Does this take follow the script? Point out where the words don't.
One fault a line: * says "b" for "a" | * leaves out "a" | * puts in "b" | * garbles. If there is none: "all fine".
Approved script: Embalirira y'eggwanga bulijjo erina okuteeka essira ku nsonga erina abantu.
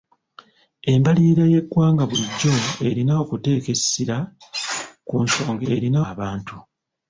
all fine